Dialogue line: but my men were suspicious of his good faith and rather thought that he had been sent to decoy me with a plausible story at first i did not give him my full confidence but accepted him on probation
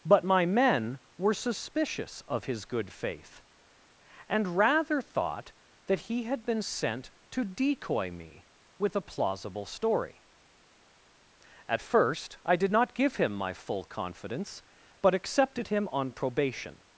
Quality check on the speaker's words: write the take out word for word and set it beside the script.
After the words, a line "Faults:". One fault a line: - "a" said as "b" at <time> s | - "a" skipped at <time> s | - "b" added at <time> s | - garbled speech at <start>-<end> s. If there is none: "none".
but my men were suspicious of his good faith and rather thought that he had been sent to decoy me with a plausible story at first i did not give him my full confidence but accepted him on probation
Faults:
none